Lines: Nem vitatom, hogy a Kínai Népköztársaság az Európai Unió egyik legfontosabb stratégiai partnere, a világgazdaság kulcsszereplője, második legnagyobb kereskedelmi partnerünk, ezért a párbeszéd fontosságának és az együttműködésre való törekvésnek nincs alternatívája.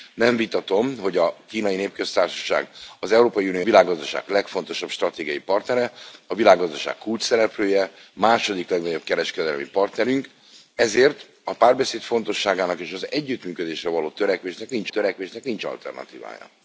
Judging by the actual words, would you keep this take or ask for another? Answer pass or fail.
fail